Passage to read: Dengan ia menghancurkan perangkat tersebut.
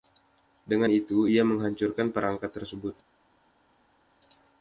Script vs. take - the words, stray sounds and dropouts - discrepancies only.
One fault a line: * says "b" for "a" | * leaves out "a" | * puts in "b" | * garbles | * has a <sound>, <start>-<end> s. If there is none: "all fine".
* puts in "itu"